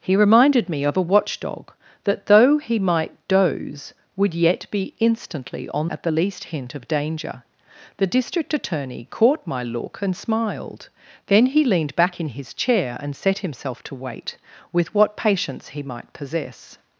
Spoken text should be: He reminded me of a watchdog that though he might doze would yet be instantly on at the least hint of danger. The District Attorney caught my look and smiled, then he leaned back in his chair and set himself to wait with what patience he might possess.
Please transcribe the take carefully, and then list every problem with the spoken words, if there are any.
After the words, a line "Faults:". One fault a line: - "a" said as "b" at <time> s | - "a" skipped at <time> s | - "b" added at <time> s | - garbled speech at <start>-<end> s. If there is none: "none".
He reminded me of a watchdog that though he might doze would yet be instantly on at the least hint of danger. The District Attorney caught my look and smiled, then he leaned back in his chair and set himself to wait with what patience he might possess.
Faults:
none